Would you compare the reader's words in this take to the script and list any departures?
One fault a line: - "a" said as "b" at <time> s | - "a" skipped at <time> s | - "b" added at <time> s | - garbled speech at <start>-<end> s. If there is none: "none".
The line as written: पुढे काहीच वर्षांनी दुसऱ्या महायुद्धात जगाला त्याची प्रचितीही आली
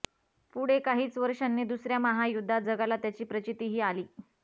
none